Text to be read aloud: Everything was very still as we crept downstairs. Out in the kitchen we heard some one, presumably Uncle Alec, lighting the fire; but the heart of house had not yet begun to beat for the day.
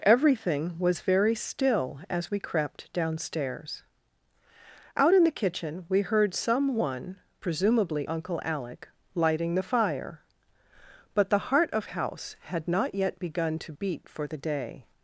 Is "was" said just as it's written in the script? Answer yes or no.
yes